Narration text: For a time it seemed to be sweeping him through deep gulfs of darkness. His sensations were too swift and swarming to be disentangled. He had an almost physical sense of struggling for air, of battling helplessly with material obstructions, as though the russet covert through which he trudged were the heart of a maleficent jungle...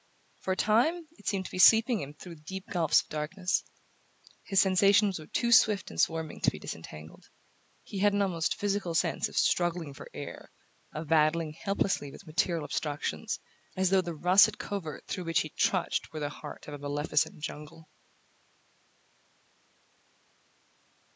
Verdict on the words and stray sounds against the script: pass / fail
pass